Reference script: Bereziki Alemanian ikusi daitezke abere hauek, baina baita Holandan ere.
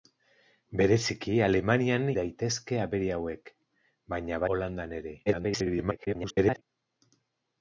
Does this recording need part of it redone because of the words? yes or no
yes